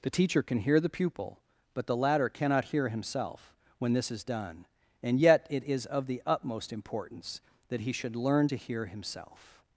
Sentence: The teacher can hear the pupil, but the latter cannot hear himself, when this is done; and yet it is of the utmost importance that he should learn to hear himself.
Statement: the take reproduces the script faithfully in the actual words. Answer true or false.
true